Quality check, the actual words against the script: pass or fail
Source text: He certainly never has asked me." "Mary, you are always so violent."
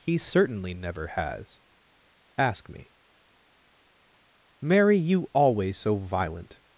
fail